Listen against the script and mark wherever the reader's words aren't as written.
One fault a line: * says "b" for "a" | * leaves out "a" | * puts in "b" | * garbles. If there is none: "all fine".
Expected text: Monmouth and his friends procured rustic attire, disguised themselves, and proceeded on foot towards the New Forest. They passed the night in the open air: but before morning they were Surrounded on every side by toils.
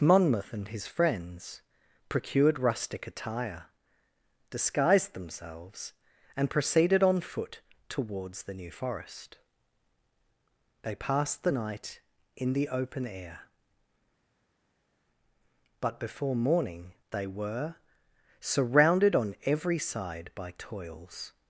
all fine